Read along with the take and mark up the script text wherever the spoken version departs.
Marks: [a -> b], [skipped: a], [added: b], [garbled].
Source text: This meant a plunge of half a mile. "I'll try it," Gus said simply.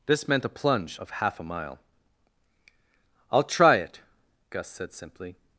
This meant a plunge of half a mile. "I'll try it," Gus said simply.